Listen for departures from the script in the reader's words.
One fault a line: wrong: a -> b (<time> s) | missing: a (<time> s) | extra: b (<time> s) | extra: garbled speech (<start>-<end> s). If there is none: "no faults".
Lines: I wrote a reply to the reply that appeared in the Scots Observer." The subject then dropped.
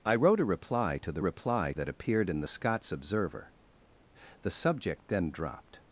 no faults